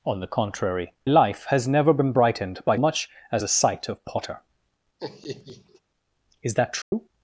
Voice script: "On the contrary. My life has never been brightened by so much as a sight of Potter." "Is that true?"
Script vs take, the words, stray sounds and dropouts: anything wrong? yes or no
yes